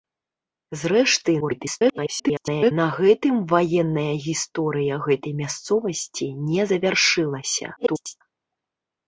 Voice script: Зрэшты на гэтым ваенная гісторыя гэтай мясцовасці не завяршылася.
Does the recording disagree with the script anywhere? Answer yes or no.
yes